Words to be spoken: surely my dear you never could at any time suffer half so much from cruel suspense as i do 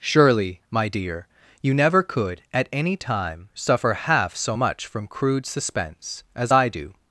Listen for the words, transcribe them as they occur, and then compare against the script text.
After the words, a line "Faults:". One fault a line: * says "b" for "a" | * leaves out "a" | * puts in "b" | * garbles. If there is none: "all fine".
surely my dear you never could at any time suffer half so much from crude suspense as i do
Faults:
* says "crude" for "cruel"